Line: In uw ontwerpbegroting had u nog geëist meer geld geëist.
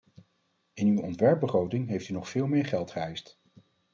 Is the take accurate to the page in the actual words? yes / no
no